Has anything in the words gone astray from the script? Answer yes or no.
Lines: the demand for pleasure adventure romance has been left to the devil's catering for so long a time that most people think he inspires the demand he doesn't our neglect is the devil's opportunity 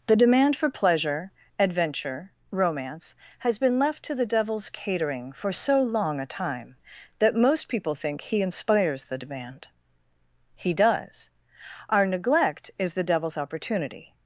yes